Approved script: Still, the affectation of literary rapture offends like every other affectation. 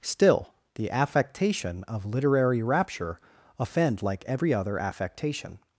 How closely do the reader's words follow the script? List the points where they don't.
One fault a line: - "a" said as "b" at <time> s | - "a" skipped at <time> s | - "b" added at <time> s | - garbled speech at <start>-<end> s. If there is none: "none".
- "offends" said as "offend" at 3.6 s